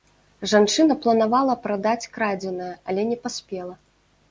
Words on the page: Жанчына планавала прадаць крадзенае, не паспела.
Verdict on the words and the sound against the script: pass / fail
fail